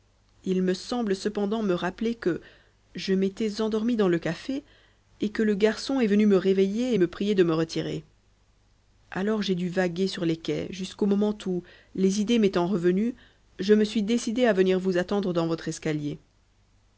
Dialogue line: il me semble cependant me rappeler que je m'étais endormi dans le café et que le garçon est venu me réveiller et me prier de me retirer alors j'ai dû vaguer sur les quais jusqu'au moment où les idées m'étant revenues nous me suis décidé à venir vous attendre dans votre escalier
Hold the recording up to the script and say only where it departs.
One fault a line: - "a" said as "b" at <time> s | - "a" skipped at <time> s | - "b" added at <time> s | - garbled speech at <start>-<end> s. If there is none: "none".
- "nous" said as "je" at 13.6 s